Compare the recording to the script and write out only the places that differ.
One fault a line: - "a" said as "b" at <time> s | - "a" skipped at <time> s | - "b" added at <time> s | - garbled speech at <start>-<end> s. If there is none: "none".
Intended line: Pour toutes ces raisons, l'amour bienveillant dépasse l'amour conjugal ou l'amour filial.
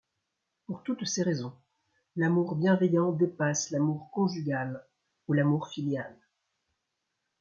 none